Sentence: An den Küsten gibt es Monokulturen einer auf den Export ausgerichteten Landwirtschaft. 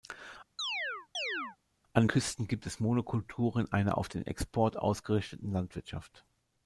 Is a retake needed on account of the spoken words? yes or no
yes